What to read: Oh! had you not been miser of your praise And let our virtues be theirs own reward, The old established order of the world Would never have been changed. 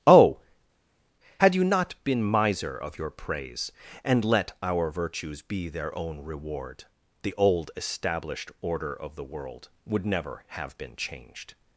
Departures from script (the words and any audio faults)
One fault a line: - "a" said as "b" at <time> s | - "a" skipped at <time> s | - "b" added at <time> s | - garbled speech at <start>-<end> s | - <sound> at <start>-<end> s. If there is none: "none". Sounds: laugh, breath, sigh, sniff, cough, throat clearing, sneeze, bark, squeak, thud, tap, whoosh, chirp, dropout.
- "theirs" said as "their" at 5.7 s